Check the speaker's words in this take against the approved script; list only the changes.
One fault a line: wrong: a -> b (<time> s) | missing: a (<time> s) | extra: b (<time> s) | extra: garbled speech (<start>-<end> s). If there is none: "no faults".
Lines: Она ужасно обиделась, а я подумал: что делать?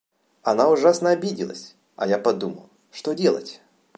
no faults